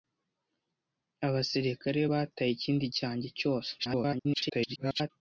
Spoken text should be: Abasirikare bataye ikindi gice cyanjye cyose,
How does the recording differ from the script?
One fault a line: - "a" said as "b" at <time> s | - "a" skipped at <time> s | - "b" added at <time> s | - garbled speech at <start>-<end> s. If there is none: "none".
- "gice" skipped at 2.8 s
- garbled speech at 3.8-5.1 s